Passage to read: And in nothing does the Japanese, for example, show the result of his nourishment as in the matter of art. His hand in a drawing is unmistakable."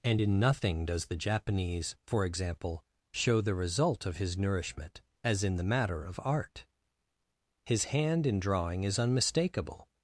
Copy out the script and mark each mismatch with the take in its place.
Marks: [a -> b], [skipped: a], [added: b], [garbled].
And in nothing does the Japanese, for example, show the result of his nourishment as in the matter of art. His hand in [skipped: a] drawing is unmistakable."